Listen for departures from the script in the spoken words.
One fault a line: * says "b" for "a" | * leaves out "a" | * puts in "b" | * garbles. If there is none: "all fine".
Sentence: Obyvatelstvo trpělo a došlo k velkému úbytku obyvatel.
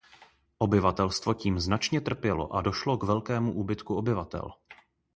* puts in "tím značně"